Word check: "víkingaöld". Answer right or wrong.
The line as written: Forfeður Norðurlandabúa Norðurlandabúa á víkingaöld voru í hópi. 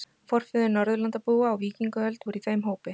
right